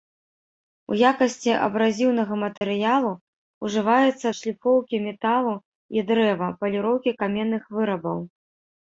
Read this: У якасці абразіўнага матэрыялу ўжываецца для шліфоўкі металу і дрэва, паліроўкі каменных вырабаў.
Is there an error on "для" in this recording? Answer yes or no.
yes